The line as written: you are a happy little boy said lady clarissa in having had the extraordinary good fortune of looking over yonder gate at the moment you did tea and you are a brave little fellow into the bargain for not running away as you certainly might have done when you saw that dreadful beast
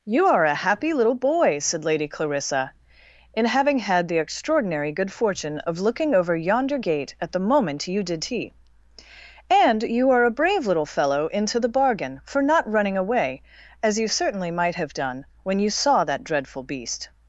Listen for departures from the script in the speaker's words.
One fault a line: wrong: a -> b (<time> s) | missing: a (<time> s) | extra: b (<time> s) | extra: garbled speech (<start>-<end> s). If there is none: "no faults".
no faults